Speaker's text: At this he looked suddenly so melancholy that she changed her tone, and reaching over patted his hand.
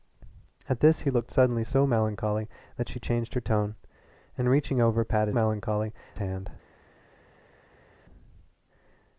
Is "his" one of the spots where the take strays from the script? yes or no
yes